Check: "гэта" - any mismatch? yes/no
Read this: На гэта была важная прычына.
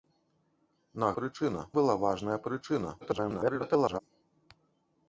yes